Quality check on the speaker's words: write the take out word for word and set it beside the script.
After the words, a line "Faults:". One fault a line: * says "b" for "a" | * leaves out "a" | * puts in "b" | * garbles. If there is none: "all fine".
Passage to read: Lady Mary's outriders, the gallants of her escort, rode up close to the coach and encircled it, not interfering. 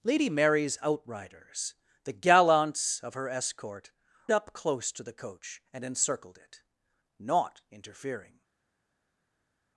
Lady Mary's outriders, the gallants of her escort, up close to the coach and encircled it, not interfering.
Faults:
* leaves out "rode"